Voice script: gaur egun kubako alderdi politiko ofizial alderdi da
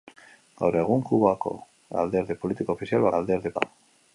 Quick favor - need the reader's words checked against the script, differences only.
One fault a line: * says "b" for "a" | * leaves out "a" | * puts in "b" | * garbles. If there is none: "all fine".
all fine